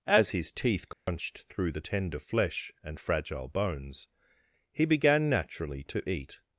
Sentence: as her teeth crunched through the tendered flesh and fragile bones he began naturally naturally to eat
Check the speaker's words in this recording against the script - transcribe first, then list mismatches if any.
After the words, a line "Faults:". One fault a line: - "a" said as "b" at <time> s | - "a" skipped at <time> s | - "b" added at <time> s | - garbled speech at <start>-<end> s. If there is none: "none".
as his teeth crunched through the tender flesh and fragile bones he began naturally to eat
Faults:
- "her" said as "his" at 0.3 s
- "tendered" said as "tender" at 1.8 s
- "naturally" skipped at 5.8 s